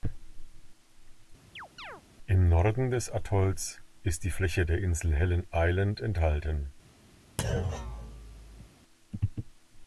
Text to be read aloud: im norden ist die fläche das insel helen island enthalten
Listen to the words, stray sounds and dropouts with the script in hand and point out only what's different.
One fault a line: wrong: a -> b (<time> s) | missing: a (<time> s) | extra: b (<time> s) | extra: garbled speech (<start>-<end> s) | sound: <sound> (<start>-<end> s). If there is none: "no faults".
sound: chirp (1.6-2.0 s)
extra: des atolls (2.9 s)
wrong: das -> der (4.6 s)
sound: thud (7.4-8.7 s)